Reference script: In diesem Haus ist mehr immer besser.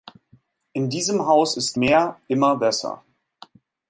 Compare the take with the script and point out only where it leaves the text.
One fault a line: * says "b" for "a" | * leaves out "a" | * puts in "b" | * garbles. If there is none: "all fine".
all fine